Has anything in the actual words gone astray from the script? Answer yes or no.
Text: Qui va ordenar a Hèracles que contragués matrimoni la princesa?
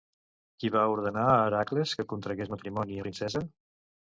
no